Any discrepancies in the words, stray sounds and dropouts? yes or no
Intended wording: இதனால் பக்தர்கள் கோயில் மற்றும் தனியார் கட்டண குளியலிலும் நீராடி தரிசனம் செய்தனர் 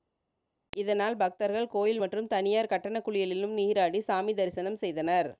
yes